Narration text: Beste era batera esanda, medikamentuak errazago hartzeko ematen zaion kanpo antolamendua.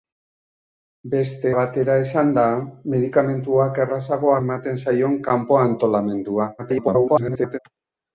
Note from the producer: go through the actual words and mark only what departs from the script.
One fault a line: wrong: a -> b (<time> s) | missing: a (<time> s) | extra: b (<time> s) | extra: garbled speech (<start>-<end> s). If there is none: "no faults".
missing: era (1.5 s)
missing: hartzeko (4.3 s)
extra: garbled speech (6.6-7.6 s)